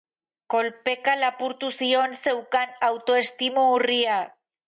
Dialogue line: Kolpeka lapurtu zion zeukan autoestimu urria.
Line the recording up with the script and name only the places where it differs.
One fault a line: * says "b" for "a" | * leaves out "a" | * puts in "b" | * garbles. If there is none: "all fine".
all fine